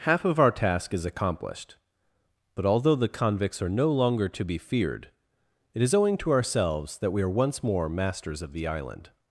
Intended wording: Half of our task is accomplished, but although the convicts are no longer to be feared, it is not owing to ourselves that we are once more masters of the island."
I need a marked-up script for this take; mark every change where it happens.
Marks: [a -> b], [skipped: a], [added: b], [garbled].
Half of our task is accomplished, but although the convicts are no longer to be feared, it is [skipped: not] owing to ourselves that we are once more masters of the island."